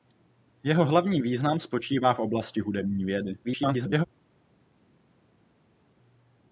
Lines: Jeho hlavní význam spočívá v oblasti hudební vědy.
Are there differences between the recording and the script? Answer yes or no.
yes